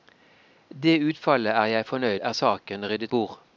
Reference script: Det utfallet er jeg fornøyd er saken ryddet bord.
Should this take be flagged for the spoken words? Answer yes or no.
no